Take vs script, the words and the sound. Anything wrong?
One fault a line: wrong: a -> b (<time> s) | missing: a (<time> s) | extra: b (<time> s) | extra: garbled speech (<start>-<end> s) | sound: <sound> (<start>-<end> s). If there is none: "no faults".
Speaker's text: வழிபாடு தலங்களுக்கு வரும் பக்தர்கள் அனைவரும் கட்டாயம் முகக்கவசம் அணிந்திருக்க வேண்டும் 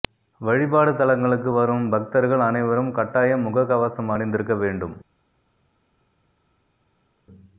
no faults